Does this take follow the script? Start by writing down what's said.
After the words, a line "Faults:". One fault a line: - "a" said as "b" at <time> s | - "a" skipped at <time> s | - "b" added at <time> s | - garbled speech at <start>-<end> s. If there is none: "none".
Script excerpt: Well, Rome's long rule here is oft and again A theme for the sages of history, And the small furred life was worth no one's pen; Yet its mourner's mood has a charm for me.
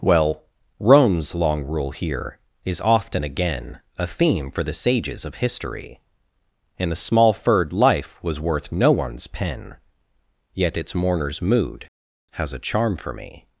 Well, Rome's long rule here is often again A theme for the sages of history, And a small furred life was worth no one's pen; Yet its mourner's mood has a charm for me.
Faults:
- "oft and" said as "often" at 2.8 s
- "the" said as "a" at 6.9 s